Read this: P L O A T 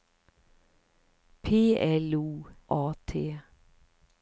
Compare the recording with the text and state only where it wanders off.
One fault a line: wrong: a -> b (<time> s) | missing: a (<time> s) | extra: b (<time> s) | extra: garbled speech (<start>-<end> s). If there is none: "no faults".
no faults